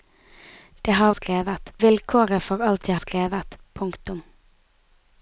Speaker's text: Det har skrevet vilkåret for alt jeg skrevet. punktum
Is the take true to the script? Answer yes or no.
yes